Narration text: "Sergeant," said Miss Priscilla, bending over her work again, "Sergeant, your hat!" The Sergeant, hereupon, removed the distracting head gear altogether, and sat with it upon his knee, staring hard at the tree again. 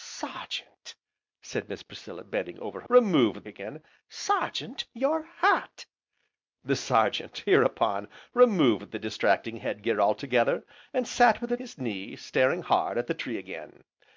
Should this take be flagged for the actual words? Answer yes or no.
yes